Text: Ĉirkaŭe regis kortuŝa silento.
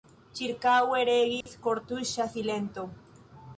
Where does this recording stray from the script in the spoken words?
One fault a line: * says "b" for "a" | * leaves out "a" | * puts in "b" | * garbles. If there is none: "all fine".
all fine